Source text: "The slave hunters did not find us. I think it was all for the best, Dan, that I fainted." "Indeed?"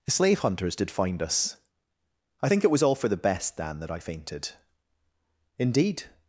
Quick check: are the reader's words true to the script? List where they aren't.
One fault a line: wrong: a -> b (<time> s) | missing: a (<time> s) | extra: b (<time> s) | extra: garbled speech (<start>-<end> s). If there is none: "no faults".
missing: not (0.9 s)